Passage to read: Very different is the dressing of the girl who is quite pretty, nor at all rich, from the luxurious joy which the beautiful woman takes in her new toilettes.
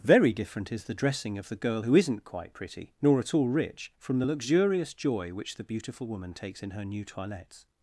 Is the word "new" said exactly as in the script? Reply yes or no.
yes